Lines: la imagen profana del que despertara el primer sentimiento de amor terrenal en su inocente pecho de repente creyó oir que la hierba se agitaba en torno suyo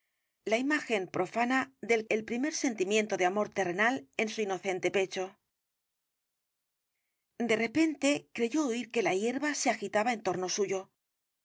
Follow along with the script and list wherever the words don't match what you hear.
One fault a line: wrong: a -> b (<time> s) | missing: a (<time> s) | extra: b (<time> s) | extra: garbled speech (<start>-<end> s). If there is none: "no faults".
missing: que despertara (2.0 s)